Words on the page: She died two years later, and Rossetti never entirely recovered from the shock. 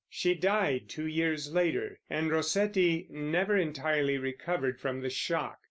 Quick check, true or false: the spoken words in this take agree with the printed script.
true